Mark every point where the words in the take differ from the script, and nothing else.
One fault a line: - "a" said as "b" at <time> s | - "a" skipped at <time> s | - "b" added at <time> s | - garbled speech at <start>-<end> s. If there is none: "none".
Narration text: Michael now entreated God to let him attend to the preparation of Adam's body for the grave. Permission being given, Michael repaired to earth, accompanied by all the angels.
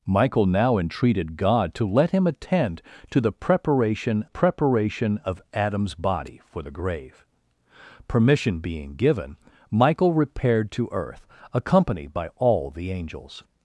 - "preparation" added at 4.2 s